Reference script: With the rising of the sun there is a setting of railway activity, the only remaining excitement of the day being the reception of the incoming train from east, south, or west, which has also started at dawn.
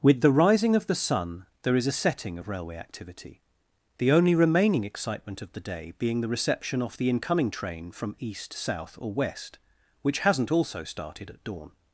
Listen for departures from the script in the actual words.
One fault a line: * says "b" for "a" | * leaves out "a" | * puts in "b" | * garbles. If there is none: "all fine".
* says "off" for "of"
* says "hasn't" for "has"